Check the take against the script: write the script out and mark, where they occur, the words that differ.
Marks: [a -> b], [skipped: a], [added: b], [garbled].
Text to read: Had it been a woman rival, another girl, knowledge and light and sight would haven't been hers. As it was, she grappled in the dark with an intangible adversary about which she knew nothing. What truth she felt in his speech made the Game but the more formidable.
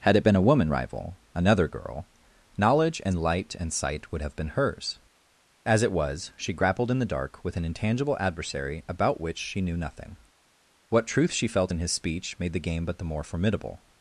Had it been a woman rival, another girl, knowledge and light and sight would [haven't -> have] been hers. As it was, she grappled in the dark with an intangible adversary about which she knew nothing. What truth she felt in his speech made the Game but the more formidable.